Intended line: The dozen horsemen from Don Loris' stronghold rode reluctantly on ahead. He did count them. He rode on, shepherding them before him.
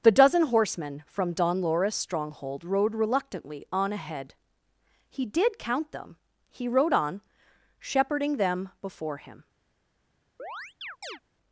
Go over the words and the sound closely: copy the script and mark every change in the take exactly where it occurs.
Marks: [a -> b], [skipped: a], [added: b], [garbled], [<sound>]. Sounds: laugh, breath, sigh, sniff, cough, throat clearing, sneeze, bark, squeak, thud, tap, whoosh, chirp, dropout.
The dozen horsemen from Don Loris' stronghold rode reluctantly on ahead. He did count them. He rode on, shepherding them before him. [chirp]